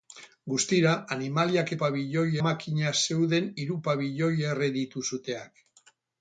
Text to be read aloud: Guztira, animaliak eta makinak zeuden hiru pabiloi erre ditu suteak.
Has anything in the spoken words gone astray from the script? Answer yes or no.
yes